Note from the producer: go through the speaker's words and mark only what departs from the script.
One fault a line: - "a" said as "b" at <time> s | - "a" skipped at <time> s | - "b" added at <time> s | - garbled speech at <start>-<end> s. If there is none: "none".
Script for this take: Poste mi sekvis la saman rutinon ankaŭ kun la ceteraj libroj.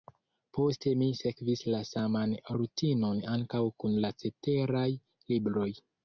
none